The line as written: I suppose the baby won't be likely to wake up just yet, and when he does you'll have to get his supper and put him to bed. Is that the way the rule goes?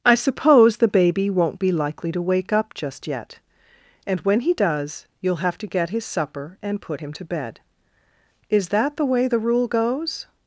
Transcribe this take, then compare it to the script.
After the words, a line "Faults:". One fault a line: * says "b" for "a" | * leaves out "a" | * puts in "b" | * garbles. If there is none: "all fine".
I suppose the baby won't be likely to wake up just yet, and when he does you'll have to get his supper and put him to bed. Is that the way the rule goes?
Faults:
all fine